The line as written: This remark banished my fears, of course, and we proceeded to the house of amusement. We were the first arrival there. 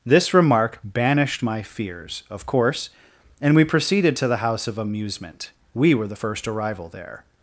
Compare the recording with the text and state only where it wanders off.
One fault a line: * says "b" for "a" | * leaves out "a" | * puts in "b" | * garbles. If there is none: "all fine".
all fine